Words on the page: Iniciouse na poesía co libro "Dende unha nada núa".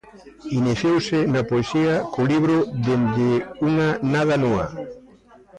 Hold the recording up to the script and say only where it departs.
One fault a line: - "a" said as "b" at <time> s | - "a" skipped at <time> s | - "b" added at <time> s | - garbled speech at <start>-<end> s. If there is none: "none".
none